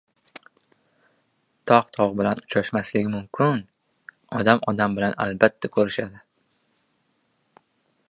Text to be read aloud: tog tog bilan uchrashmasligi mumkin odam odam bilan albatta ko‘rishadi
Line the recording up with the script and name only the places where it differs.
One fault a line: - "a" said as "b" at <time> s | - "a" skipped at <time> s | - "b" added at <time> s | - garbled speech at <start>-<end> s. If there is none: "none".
none